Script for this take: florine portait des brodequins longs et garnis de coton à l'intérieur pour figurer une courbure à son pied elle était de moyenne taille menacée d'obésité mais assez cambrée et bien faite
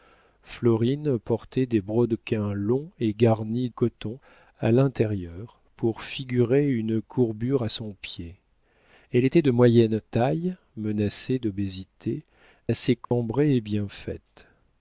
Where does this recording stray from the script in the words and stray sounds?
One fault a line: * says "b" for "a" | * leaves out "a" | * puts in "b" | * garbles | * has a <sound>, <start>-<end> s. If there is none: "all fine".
* leaves out "de"
* leaves out "mais"
* has a dropout, 13.0-13.1 s